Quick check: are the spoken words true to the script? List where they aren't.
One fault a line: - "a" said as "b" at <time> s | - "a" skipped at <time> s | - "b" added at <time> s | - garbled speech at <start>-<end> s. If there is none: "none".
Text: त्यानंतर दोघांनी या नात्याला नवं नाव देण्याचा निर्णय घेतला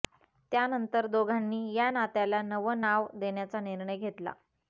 none